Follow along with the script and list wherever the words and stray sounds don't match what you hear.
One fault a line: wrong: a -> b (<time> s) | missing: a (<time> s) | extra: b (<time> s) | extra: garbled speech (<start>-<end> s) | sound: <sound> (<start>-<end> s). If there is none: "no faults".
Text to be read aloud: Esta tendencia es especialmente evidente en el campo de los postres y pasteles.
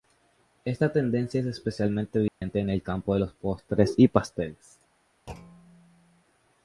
sound: dropout (2.3-2.4 s)
sound: thud (5.3-6.2 s)